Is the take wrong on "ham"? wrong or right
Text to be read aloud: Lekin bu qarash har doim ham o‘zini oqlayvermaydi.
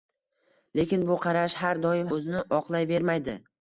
wrong